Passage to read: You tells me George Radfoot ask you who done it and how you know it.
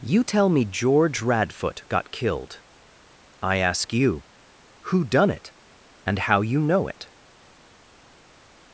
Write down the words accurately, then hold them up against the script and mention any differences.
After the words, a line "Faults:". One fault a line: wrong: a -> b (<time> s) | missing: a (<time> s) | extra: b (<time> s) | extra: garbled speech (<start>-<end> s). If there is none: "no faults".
You tell me George Radfoot got killed. I ask you who done it and how you know it.
Faults:
wrong: tells -> tell (0.2 s)
extra: got killed I (1.9 s)